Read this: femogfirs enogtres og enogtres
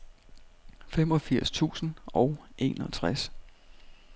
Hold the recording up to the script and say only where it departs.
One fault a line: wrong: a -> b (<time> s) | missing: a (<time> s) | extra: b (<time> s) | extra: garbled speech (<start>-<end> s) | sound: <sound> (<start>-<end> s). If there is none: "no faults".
wrong: enogtres -> tusind (1.5 s)